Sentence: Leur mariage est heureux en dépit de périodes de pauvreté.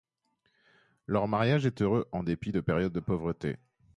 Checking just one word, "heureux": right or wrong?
right